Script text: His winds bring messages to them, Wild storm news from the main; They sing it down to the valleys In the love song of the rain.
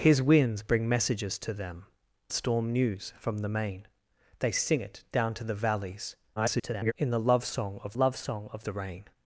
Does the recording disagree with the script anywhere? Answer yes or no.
yes